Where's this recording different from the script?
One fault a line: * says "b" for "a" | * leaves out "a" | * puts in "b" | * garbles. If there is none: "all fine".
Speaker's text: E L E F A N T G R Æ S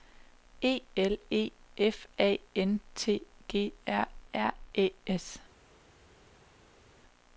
* puts in "R"